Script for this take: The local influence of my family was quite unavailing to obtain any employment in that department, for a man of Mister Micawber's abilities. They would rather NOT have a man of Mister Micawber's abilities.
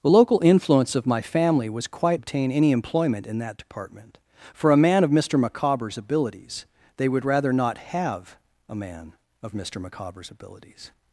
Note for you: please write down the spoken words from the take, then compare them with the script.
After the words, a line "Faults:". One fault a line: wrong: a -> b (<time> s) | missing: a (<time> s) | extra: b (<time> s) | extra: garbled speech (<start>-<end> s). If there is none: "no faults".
The local influence of my family was quite obtain any employment in that department, for a man of Mister Micawber's abilities. They would rather NOT have a man of Mister Micawber's abilities.
Faults:
missing: unavailing to (2.2 s)